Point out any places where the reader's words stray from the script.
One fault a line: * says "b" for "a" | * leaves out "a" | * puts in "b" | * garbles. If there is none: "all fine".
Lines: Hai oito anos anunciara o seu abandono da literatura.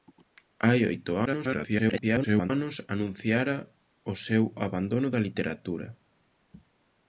* garbles